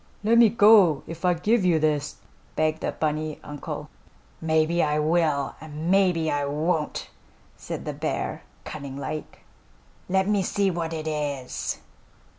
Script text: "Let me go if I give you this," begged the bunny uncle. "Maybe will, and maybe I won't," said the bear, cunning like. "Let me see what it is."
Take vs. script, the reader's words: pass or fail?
fail